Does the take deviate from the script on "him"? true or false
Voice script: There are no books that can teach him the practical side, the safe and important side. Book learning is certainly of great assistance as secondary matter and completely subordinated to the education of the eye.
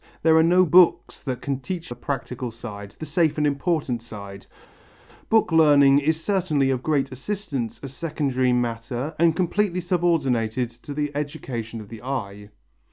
true